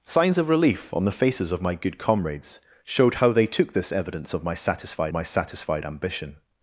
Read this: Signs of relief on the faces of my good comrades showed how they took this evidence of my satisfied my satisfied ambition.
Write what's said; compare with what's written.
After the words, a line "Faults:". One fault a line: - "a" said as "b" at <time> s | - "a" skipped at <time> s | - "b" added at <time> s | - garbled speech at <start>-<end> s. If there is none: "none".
Signs of relief on the faces of my good comrades showed how they took this evidence of my satisfied my satisfied ambition.
Faults:
none